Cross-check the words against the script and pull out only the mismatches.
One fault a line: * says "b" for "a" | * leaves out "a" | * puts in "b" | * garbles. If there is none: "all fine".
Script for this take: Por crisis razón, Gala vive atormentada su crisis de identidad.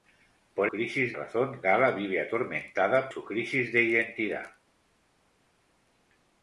all fine